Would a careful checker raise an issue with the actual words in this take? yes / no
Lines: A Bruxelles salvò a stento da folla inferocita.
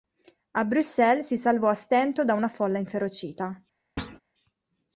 yes